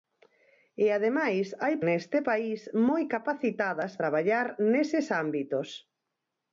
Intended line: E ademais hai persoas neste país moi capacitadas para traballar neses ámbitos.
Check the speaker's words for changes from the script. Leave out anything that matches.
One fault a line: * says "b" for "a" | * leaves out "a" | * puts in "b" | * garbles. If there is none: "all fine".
* leaves out "persoas"
* leaves out "para"